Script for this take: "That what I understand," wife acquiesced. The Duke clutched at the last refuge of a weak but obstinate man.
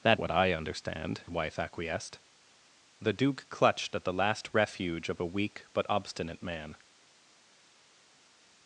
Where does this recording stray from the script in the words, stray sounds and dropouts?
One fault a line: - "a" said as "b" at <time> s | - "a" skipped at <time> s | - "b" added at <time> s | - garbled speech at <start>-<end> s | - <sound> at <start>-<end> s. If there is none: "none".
none